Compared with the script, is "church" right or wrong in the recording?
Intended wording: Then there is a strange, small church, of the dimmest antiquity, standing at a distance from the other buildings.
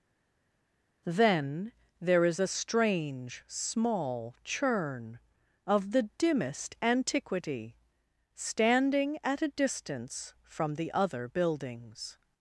wrong